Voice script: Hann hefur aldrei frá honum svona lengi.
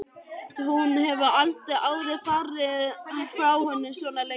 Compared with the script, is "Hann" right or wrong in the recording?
wrong